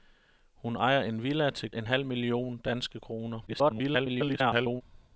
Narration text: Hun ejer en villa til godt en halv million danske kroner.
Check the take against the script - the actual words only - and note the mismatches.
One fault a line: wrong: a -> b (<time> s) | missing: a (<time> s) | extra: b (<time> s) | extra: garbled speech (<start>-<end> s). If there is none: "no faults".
missing: godt (1.7 s)
extra: garbled speech (3.5-4.8 s)